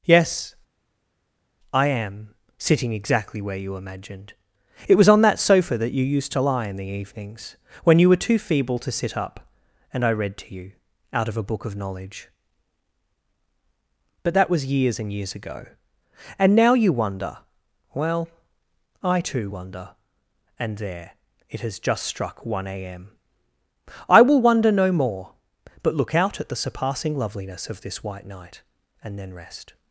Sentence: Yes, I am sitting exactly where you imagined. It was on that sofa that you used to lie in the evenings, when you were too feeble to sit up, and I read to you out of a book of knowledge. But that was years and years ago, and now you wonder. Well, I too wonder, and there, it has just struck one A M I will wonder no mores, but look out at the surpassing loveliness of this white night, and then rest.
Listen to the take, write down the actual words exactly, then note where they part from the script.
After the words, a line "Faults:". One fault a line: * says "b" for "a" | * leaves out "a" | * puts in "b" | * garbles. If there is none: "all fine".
Yes, I am sitting exactly where you imagined. It was on that sofa that you used to lie in the evenings, when you were too feeble to sit up, and I read to you out of a book of knowledge. But that was years and years ago, and now you wonder. Well, I too wonder, and there, it has just struck one A M I will wonder no more, but look out at the surpassing loveliness of this white night, and then rest.
Faults:
* says "more" for "mores"